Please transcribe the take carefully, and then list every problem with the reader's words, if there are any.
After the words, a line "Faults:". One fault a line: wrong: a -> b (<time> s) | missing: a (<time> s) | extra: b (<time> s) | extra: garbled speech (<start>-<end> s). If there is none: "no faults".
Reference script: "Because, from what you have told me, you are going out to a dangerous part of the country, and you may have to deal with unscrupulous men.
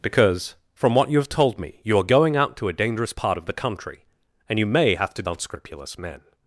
"Because, from what you have told me, you are going out to a dangerous part of the country, and you may have to unscrupulous men.
Faults:
missing: deal with (5.2 s)